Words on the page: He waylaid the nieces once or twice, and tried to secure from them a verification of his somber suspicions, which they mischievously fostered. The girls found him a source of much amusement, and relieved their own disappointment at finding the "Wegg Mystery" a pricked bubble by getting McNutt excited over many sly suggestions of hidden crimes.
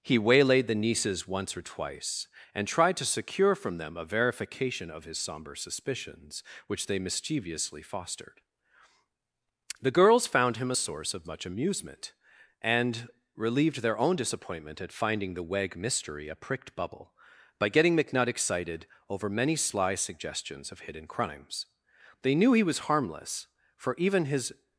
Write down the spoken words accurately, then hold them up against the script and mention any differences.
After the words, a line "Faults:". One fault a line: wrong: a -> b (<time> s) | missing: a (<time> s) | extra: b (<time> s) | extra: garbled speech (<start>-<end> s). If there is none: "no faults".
He waylaid the nieces once or twice, and tried to secure from them a verification of his somber suspicions, which they mischievously fostered. The girls found him a source of much amusement, and relieved their own disappointment at finding the "Wegg Mystery" a pricked bubble by getting McNutt excited over many sly suggestions of hidden crimes. They knew he was harmless, for even his
Faults:
extra: They knew he was harmless for even his (22.2 s)